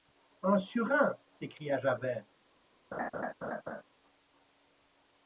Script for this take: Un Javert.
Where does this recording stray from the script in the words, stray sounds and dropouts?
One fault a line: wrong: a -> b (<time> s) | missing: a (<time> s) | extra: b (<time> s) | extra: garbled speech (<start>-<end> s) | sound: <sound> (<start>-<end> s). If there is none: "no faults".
extra: surin s'écria (0.6 s)
sound: laugh (2.9-3.8 s)